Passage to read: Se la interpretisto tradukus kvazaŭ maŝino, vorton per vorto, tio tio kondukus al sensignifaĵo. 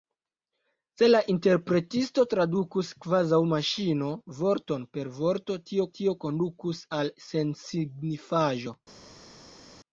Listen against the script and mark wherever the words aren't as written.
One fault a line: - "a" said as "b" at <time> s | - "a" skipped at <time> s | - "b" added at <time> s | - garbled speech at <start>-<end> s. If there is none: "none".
none